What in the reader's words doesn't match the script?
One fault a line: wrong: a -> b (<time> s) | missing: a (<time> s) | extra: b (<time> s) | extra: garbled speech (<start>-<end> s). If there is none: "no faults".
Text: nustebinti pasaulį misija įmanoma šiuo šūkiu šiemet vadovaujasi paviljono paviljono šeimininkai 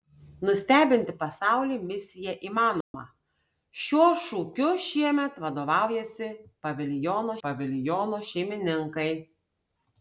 no faults